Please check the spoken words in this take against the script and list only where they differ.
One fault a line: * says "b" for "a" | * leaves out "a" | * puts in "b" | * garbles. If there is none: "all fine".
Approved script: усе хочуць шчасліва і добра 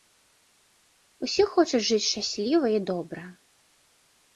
* puts in "жыць"